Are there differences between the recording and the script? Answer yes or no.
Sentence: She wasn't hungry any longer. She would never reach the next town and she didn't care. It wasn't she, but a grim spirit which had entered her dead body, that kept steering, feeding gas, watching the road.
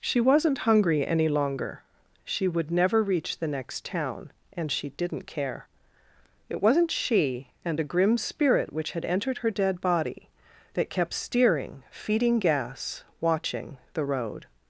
yes